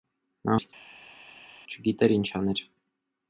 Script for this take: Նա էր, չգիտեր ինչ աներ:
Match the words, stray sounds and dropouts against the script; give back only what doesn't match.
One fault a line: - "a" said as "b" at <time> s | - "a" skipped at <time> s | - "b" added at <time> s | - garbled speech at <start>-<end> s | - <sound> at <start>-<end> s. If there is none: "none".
none